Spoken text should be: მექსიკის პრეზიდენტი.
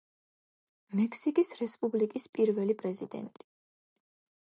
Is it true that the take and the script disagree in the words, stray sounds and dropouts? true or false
true